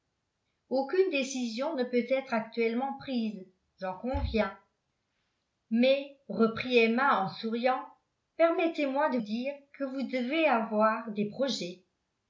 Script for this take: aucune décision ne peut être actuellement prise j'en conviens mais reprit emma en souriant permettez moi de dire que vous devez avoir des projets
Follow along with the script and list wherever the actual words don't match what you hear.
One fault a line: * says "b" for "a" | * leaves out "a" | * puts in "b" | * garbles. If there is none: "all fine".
all fine